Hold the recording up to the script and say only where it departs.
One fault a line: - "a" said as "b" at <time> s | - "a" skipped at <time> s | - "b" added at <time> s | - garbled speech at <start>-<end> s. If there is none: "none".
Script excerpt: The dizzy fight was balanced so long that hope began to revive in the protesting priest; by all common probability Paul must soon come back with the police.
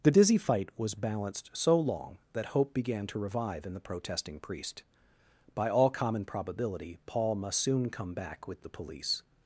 none